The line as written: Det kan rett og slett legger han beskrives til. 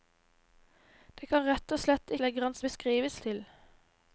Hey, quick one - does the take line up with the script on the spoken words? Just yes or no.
yes